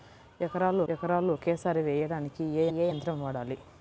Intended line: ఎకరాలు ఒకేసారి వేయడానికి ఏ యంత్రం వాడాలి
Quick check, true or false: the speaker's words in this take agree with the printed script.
false